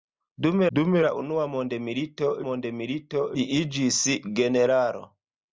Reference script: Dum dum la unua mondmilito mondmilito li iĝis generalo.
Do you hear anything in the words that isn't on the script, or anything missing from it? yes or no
no